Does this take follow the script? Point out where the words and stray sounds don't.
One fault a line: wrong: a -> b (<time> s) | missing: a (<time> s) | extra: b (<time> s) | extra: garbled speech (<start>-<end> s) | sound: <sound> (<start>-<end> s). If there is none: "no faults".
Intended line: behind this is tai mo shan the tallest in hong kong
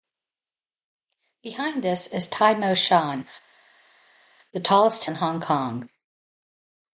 no faults